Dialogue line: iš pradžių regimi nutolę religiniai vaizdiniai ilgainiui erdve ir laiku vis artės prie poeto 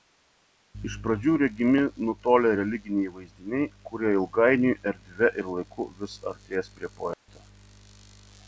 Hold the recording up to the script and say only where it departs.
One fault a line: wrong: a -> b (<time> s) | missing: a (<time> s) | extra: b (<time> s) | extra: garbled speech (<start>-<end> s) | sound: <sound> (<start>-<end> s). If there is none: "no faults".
extra: kurie (3.9 s)
sound: dropout (7.1-7.3 s)